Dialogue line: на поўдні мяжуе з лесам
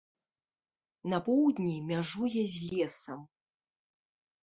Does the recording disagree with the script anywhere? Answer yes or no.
no